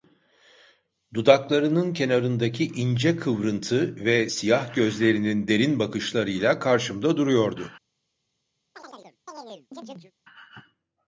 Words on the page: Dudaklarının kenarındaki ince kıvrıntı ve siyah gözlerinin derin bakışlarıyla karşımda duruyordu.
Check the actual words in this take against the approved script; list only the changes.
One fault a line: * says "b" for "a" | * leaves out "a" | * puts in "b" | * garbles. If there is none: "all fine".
all fine